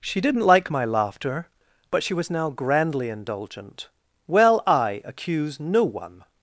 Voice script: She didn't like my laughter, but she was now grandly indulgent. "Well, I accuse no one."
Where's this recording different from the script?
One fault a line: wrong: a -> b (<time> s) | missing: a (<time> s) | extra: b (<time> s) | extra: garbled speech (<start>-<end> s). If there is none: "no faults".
no faults